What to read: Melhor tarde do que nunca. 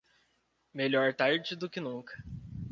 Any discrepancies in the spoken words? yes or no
no